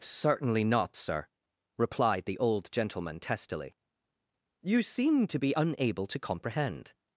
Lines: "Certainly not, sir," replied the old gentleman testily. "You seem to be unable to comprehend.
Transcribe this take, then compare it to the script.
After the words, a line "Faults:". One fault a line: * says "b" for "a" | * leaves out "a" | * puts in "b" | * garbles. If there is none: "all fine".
"Certainly not, sir," replied the old gentleman testily. "You seem to be unable to comprehend.
Faults:
all fine